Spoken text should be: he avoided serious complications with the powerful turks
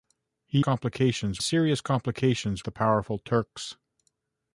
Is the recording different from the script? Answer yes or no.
yes